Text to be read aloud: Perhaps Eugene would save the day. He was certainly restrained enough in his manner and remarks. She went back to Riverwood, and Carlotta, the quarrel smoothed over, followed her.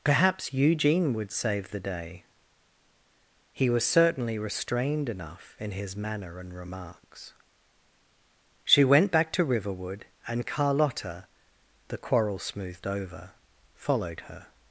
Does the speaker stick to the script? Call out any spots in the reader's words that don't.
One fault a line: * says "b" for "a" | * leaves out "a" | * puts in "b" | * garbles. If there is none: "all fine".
all fine